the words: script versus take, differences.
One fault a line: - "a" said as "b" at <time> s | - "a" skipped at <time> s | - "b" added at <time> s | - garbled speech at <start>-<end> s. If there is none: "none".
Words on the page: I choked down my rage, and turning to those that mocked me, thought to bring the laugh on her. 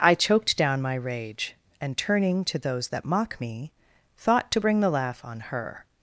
- "mocked" said as "mock" at 3.0 s